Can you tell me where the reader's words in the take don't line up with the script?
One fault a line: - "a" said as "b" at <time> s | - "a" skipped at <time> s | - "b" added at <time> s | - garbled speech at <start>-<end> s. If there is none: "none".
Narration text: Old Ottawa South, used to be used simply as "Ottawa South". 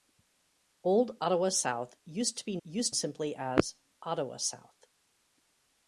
none